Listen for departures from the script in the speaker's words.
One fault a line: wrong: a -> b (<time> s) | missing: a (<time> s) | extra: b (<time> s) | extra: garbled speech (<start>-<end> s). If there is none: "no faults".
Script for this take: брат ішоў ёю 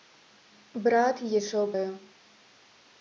no faults